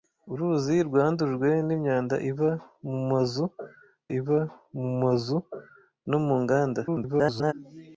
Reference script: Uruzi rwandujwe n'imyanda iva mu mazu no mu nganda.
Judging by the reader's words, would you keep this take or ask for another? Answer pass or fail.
fail